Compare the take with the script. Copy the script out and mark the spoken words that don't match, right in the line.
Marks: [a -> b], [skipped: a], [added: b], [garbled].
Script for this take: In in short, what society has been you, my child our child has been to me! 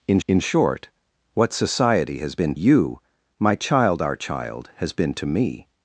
In in short, what society has been you, my child our child has been to me!